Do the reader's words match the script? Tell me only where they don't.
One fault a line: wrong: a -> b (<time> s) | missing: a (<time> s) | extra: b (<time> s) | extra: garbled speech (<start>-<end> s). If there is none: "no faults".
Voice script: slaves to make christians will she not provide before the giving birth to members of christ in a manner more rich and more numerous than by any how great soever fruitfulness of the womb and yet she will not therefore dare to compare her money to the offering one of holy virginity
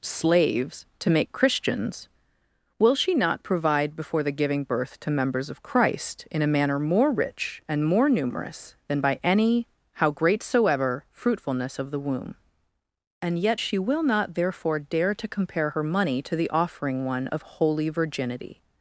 no faults